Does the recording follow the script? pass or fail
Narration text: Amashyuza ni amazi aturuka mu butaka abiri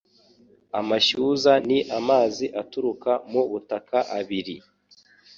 pass